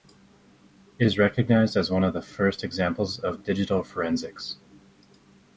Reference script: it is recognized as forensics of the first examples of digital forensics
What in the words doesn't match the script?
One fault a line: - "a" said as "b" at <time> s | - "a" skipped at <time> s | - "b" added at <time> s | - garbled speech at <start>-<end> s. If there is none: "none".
- "forensics" said as "one" at 1.9 s